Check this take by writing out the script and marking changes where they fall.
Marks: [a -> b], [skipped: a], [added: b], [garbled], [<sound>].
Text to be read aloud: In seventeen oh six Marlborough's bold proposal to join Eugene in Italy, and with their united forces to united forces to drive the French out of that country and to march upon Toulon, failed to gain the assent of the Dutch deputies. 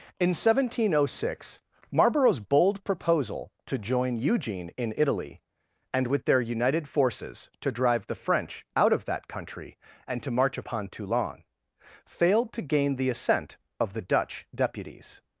In seventeen oh six Marlborough's bold proposal to join Eugene in Italy, and with their united forces to [skipped: united forces to] drive the French out of that country and to march upon Toulon, failed to gain the assent of the Dutch deputies.